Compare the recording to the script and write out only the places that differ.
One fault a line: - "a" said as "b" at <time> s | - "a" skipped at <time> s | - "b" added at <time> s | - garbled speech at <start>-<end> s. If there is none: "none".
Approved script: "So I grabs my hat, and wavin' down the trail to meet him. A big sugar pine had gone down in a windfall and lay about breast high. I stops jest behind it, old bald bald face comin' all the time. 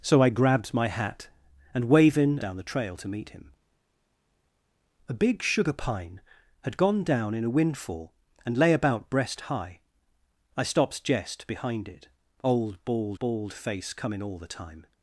none